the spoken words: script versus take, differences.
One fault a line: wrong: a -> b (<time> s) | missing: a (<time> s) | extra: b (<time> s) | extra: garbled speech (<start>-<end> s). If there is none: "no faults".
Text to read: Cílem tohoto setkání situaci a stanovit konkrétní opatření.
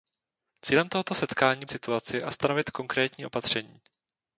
no faults